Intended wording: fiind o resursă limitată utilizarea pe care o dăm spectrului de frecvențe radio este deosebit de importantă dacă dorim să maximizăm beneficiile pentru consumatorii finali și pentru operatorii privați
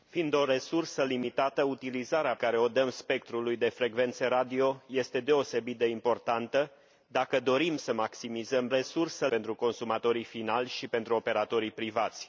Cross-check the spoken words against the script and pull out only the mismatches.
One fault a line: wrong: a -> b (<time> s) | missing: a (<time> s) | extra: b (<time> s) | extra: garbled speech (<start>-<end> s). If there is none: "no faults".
missing: pe (2.4 s)
wrong: beneficiile -> resursă (8.7 s)